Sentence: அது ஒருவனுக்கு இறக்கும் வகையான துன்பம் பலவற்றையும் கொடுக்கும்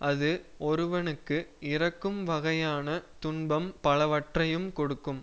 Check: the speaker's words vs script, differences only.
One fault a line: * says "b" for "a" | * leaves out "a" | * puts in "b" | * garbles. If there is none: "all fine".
all fine